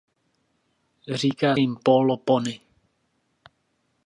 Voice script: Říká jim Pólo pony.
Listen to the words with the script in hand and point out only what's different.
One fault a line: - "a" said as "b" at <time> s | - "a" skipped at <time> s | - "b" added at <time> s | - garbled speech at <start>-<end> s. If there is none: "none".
none